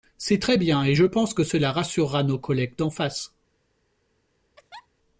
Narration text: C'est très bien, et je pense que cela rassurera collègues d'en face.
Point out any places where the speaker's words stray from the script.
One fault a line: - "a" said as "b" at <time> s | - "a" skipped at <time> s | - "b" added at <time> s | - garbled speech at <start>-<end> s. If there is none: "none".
- "nos" added at 2.2 s